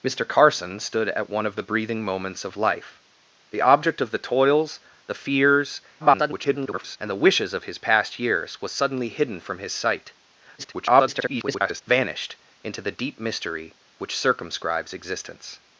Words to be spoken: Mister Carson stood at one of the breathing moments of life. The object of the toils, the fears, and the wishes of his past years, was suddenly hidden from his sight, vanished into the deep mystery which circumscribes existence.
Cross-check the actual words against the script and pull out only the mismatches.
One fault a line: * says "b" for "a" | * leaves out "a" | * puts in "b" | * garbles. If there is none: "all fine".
* garbles
* garbles